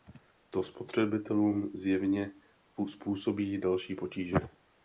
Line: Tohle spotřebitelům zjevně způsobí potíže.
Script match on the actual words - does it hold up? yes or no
no